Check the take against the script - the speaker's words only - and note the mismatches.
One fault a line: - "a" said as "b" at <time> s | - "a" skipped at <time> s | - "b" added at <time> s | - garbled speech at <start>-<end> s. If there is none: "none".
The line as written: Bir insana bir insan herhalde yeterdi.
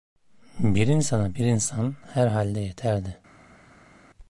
none